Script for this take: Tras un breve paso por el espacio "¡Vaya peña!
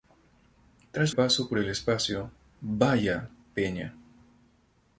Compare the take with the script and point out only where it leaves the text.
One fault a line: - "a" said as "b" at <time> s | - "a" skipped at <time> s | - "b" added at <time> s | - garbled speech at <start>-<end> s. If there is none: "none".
- "un breve" skipped at 1.1 s